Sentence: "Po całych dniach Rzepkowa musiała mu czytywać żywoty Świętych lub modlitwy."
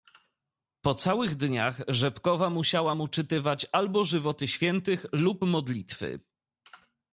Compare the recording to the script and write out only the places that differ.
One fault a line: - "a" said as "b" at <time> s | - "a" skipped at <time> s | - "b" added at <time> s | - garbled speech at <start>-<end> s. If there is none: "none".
- "albo" added at 3.7 s